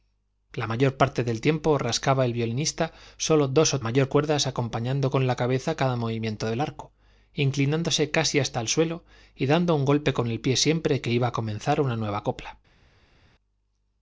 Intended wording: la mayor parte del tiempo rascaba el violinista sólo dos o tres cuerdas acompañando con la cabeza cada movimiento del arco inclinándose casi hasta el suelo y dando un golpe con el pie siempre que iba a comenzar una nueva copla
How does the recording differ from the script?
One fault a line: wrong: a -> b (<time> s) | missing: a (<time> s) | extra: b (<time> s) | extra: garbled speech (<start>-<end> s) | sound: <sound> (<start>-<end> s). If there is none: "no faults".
wrong: tres -> mayor (3.8 s)